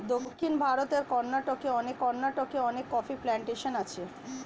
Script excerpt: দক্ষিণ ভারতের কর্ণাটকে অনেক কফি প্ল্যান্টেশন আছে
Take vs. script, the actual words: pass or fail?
fail